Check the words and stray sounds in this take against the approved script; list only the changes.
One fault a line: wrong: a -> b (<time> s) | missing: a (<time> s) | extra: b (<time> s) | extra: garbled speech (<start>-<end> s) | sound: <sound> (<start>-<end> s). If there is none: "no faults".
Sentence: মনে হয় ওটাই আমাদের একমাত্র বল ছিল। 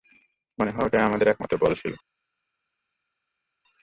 no faults